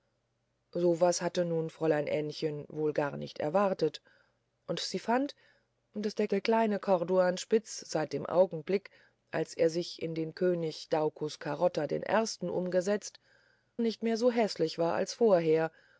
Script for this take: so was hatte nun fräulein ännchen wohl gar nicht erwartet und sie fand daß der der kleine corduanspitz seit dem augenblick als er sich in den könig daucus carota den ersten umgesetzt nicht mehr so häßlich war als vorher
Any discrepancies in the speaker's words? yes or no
no